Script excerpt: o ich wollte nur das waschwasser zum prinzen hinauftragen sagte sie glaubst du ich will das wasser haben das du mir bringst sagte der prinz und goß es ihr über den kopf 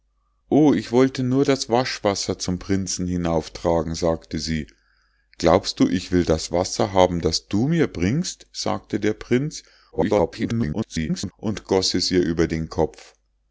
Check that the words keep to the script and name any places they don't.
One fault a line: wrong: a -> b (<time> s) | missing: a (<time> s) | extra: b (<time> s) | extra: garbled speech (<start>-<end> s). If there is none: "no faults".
extra: garbled speech (9.9-11.3 s)